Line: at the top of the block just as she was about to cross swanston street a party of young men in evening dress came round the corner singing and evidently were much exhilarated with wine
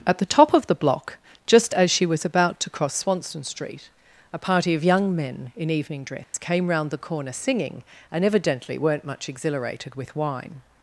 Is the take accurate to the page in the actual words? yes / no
no